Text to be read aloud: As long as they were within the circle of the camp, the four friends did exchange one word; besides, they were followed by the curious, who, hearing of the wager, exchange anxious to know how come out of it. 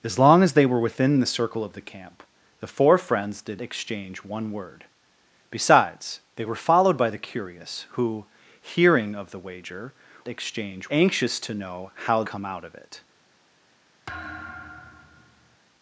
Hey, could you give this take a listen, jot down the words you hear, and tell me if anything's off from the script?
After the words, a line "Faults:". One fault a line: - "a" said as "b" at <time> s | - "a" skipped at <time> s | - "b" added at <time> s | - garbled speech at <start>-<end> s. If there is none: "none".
As long as they were within the circle of the camp, the four friends did exchange one word; besides, they were followed by the curious, who, hearing of the wager, exchange anxious to know how come out of it.
Faults:
none